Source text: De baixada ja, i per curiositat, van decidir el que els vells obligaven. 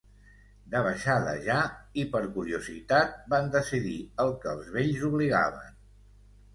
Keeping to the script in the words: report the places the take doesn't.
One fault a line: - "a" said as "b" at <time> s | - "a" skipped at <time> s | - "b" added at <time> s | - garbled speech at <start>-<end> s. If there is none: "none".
none